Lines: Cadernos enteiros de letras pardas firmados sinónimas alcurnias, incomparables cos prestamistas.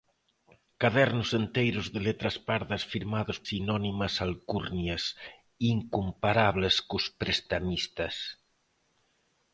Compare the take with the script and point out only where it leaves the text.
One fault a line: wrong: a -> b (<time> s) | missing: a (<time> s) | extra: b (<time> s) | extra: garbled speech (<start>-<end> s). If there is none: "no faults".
no faults